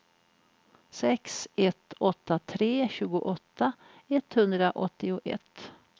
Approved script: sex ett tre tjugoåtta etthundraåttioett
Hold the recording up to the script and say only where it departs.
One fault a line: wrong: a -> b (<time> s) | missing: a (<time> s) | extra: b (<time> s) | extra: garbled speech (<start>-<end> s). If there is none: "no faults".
extra: åtta (2.0 s)